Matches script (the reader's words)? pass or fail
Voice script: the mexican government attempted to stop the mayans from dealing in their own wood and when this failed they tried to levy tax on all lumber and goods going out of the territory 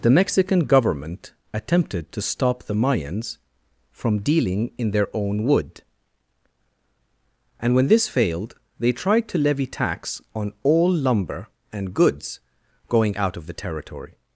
pass